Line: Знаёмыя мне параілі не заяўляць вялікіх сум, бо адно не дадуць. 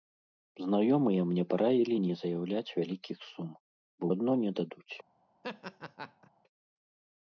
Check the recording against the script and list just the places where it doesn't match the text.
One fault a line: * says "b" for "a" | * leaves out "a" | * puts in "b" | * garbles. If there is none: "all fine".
all fine